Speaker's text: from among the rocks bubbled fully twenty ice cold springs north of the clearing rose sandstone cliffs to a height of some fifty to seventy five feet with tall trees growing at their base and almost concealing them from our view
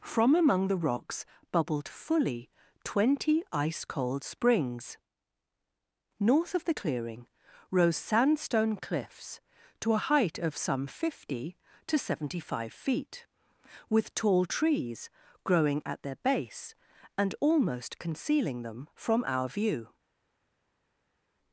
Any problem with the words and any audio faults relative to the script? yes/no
no